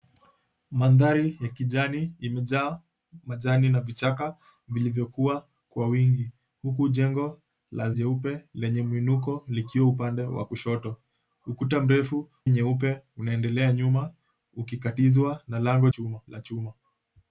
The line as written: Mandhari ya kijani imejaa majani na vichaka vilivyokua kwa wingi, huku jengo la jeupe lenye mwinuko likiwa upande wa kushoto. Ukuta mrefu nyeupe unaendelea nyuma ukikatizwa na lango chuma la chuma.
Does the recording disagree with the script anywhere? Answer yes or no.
no